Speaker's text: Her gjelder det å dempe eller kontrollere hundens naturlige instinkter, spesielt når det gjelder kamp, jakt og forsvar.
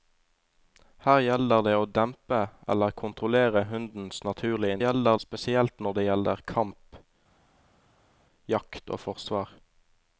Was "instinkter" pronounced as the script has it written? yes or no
no